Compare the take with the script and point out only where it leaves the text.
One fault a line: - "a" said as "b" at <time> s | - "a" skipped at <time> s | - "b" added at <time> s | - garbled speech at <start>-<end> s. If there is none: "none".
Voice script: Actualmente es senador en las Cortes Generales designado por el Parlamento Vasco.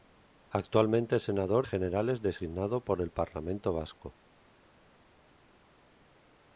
- "en las Cortes" skipped at 1.7 s